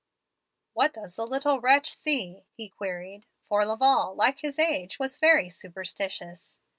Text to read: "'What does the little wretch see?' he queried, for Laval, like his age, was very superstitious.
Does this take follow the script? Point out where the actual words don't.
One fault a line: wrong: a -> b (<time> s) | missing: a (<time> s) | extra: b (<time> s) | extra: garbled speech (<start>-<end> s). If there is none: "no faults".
no faults